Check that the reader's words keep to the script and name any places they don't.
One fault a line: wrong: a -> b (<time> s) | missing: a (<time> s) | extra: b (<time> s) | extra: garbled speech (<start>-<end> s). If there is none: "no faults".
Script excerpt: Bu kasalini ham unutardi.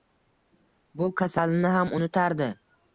no faults